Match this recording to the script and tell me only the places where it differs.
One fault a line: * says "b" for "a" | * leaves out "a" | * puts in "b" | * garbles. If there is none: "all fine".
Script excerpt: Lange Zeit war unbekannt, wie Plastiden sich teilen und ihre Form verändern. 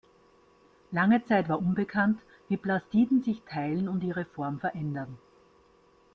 all fine